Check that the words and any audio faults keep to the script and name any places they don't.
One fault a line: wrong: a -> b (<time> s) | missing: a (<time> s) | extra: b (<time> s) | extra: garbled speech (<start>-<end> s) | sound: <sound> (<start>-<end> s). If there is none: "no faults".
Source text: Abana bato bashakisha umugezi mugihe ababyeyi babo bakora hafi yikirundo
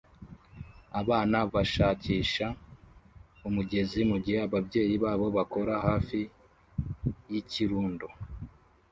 missing: bato (1.4 s)